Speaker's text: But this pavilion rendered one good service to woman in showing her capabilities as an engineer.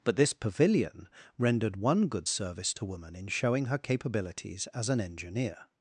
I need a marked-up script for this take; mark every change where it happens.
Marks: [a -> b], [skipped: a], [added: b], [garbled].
But this pavilion rendered one good service to woman in showing her capabilities as an engineer.